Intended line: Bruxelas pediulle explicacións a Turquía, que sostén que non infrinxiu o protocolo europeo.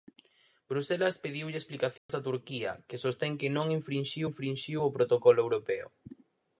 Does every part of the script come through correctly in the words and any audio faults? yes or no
no